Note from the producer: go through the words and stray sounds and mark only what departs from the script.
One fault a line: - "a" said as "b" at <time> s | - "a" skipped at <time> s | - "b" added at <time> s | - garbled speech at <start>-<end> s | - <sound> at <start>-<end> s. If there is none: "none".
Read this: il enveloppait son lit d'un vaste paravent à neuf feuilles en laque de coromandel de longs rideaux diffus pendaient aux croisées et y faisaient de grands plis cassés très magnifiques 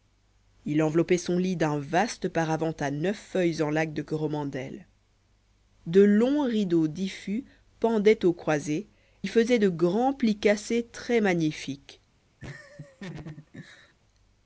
- "et" skipped at 8.9 s
- laugh at 12.4-13.9 s